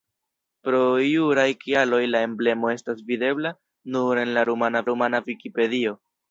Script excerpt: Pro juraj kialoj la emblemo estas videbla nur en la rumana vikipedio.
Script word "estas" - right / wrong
right